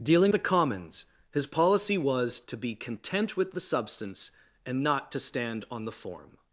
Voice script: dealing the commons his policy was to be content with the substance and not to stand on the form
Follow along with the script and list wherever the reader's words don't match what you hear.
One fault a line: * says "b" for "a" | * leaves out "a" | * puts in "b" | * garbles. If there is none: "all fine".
all fine